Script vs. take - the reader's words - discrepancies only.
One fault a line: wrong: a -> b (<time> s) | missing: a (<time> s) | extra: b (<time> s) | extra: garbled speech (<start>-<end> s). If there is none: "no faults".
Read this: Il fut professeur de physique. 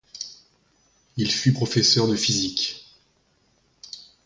no faults